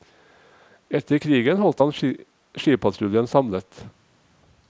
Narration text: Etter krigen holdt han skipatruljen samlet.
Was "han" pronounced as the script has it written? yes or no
yes